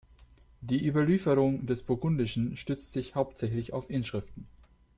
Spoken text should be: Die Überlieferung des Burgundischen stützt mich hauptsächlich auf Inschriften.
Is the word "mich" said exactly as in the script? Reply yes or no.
no